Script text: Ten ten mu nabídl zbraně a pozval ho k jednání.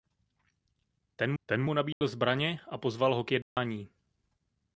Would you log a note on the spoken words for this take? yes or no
no